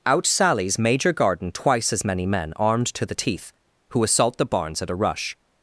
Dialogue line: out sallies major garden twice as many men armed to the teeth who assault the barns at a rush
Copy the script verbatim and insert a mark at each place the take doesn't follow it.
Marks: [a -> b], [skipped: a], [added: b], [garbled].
out sallies major garden twice as many men armed to the teeth who assault the barns at a rush